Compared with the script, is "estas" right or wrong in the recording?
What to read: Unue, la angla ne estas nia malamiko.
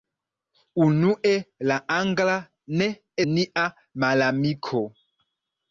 wrong